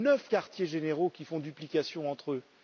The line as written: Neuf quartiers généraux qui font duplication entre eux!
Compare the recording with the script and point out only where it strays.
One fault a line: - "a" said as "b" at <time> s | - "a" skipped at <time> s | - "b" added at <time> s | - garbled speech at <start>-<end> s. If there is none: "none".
none